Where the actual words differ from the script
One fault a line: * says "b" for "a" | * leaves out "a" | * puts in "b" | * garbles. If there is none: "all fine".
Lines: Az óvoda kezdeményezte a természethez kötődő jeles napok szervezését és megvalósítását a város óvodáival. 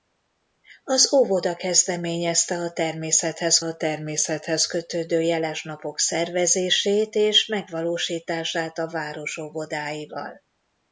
* puts in "a természethez"